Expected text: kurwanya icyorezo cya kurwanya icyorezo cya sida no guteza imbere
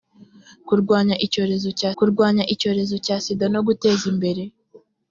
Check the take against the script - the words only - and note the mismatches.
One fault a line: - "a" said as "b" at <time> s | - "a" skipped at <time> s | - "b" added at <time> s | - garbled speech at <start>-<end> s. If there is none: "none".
none